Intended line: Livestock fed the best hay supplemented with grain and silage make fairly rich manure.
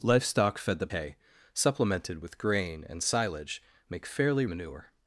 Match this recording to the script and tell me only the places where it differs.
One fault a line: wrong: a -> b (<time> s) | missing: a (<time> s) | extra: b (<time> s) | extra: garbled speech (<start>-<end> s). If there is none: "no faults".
missing: best (0.9 s)
missing: rich (4.4 s)